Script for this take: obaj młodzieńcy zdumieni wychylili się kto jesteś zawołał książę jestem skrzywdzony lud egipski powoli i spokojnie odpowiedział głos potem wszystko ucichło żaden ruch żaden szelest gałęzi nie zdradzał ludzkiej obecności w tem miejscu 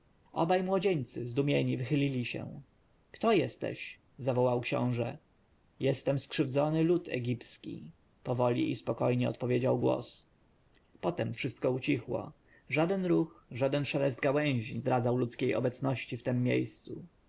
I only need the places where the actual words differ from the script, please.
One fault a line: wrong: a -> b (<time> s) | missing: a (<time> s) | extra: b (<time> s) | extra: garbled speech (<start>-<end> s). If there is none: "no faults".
missing: nie (14.8 s)